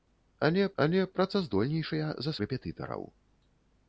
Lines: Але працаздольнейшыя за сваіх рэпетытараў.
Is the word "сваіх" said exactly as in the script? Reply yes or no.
no